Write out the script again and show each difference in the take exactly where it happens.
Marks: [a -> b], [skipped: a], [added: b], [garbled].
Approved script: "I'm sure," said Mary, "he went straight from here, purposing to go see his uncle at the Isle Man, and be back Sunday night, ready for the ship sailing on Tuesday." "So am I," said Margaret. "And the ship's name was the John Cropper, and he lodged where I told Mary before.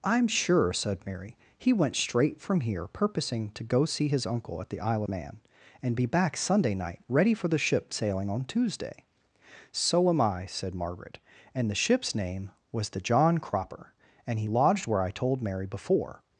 "I'm sure," said Mary, "he went straight from here, purposing to go see his uncle at the Isle Man, and be back Sunday night, ready for the ship sailing on Tuesday." "So am I," said Margaret. "And the ship's name was the John Cropper, and he lodged where I told Mary before.